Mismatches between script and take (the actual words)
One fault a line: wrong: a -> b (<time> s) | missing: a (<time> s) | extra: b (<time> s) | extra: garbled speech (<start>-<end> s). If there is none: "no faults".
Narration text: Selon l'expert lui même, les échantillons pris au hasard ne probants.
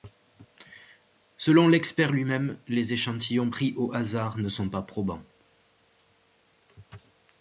extra: sont pas (4.5 s)